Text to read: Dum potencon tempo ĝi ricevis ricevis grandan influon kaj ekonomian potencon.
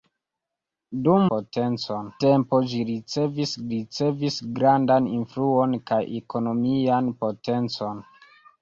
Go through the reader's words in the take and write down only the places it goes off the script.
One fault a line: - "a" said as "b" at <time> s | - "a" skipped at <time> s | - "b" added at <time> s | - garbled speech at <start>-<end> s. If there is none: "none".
none